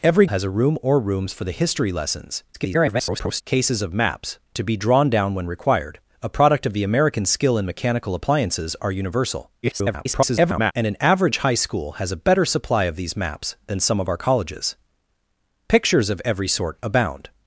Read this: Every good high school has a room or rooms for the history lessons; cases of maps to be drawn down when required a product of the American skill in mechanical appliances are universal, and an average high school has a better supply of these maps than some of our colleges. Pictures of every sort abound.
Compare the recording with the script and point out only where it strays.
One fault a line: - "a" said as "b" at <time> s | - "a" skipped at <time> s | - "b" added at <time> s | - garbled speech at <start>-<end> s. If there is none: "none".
- "good high school" skipped at 0.2 s
- garbled speech at 2.5-3.4 s
- garbled speech at 9.6-10.7 s